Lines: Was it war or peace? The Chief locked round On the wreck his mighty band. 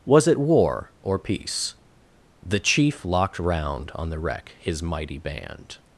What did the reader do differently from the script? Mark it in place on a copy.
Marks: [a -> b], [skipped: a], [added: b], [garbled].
Was it war or peace? The Chief locked round On the wreck his mighty band.